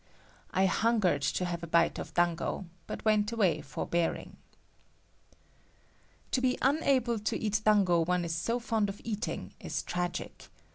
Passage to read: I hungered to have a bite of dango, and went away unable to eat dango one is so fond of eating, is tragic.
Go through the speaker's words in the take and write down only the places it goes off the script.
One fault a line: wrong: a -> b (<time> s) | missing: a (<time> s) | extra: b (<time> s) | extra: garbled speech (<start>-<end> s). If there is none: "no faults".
wrong: and -> but (2.9 s)
extra: forbearing To be (3.6 s)